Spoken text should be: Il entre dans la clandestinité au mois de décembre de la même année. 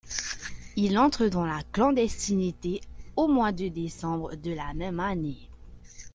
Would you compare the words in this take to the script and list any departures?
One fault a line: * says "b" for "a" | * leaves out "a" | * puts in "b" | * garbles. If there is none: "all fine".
all fine